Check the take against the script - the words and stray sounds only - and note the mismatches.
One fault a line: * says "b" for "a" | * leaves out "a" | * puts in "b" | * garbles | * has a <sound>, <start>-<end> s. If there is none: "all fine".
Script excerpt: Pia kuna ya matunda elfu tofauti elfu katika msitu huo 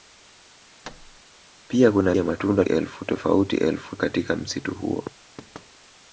* has a thud, 0.8-1.2 s
* has a thud, 5.4-5.7 s